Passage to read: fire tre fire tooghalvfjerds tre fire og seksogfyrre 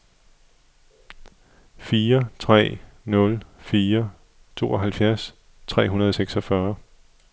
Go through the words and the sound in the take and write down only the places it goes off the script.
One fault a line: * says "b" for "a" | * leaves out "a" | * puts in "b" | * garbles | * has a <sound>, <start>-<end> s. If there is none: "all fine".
* puts in "nul"
* says "hundrede" for "fire"